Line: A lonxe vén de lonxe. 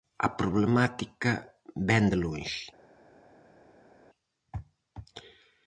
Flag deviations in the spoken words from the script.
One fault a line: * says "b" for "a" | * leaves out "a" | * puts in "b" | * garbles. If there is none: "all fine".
* says "problemática" for "lonxe"